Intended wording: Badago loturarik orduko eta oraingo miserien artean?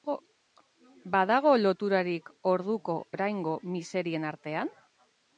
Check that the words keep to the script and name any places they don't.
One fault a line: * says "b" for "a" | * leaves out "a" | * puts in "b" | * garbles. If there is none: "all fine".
* leaves out "eta"